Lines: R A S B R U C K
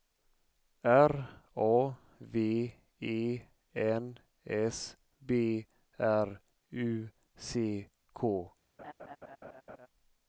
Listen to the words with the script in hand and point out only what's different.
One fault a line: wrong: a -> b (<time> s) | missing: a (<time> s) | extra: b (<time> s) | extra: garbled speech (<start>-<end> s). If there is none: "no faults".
extra: V E N (2.2 s)